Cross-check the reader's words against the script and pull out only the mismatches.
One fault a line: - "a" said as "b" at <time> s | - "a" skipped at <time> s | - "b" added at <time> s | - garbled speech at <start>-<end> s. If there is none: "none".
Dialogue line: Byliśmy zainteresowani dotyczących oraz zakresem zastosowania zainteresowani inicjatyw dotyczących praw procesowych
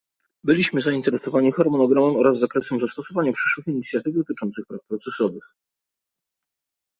- "dotyczących" said as "harmonogramem" at 1.5 s
- "zainteresowani" said as "przyszłych" at 3.3 s